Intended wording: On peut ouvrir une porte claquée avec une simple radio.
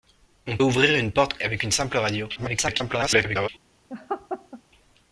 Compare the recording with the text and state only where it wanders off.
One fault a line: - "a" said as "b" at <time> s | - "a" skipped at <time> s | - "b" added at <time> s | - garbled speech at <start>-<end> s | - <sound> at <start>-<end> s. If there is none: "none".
- "peut" skipped at 0.6 s
- "claquée" skipped at 1.4 s
- garbled speech at 2.4-3.5 s
- laugh at 3.9-4.6 s